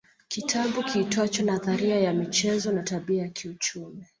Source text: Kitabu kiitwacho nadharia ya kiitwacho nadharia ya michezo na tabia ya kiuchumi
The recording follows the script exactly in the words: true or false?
false